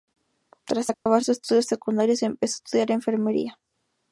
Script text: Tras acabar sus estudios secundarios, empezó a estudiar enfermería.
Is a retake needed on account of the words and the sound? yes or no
yes